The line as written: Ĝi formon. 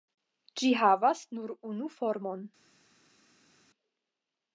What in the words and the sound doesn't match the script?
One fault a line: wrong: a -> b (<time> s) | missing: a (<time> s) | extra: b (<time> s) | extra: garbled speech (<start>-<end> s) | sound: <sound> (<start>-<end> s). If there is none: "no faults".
extra: havas nur unu (0.8 s)